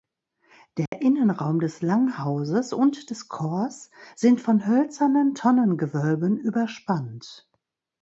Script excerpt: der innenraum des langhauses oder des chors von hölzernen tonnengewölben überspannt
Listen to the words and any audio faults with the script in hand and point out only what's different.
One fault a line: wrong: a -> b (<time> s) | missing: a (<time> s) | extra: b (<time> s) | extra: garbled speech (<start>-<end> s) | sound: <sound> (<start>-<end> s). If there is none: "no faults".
sound: dropout (0.9-0.9 s)
wrong: oder -> und (2.7 s)
extra: sind (4.2 s)